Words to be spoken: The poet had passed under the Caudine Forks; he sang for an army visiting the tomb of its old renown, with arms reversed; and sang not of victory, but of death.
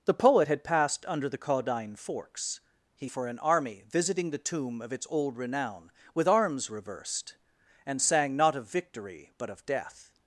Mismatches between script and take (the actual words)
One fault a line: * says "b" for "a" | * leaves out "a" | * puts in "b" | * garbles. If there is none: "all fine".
* leaves out "sang"